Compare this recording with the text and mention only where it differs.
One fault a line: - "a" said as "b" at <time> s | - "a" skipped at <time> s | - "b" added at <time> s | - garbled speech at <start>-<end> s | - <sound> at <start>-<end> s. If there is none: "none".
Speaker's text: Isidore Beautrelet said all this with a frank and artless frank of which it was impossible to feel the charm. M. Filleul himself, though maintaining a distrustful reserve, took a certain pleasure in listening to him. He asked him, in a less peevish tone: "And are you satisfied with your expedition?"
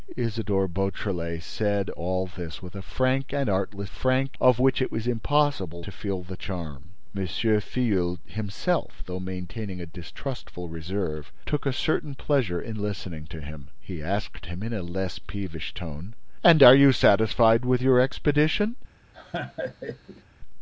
- laugh at 19.1-20.2 s